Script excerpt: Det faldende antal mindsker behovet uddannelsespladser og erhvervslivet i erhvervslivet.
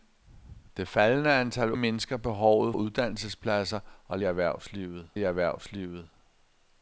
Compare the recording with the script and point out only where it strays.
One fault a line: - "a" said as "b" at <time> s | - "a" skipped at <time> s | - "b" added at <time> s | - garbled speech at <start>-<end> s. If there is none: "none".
none